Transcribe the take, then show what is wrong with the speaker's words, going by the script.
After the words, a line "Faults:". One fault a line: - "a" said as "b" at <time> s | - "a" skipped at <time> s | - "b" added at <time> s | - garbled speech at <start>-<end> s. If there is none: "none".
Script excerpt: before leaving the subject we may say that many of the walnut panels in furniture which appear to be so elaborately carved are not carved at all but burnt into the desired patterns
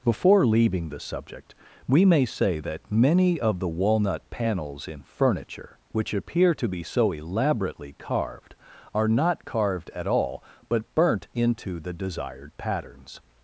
before leaving the subject we may say that many of the walnut panels in furniture which appear to be so elaborately carved are not carved at all but burnt into the desired patterns
Faults:
none